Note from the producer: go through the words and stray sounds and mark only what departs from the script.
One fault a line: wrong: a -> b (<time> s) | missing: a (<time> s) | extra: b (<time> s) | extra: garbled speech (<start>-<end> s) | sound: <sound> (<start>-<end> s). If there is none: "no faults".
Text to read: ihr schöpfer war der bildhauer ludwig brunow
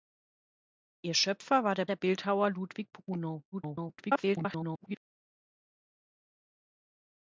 extra: der (1.9 s)
extra: garbled speech (3.5-5.0 s)